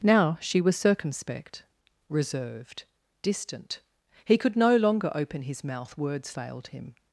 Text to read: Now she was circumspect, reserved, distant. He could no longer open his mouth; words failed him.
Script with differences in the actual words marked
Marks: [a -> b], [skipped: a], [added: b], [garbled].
Now she was circumspect, reserved, distant. He could no longer open his mouth; words failed him.